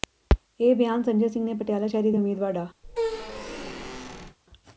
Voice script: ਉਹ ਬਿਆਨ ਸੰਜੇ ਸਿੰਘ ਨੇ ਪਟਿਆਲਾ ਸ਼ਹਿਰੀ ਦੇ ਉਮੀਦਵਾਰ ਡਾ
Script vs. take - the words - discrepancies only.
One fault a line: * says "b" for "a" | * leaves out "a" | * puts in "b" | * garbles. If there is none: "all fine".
* says "ਇਹ" for "ਉਹ"